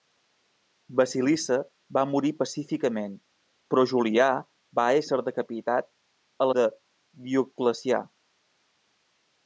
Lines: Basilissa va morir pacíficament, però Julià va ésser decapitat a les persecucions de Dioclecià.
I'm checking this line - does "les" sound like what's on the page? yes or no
no